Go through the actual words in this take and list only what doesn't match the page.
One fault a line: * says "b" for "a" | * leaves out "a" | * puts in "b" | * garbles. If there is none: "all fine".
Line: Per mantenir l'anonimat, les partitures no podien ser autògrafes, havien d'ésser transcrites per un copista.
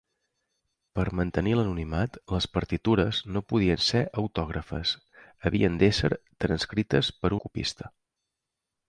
* leaves out "un"